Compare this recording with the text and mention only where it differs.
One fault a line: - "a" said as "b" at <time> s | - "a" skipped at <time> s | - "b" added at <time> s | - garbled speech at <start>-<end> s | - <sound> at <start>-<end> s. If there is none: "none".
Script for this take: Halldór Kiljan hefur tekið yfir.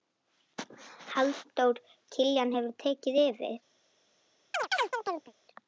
- chirp at 4.5-5.3 s